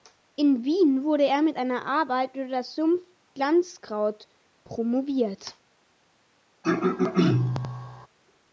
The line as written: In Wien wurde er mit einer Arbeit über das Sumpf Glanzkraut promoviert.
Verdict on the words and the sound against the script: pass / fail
fail